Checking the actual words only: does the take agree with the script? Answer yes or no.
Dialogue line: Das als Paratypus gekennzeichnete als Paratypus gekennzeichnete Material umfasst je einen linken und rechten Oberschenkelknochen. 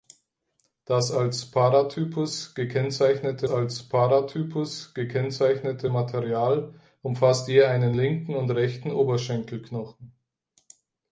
yes